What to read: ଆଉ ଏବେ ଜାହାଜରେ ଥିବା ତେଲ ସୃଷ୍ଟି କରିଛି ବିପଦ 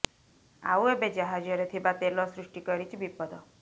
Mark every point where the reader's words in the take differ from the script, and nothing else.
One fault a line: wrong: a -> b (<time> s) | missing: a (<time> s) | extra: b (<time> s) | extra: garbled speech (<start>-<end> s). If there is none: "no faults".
no faults